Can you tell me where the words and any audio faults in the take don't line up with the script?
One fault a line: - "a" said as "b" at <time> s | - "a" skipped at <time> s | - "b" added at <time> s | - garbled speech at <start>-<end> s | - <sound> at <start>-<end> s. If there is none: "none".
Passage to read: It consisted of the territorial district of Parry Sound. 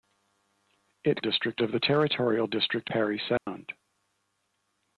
- "consisted" said as "district" at 1.2 s
- "of" skipped at 2.9 s
- dropout at 3.4-3.5 s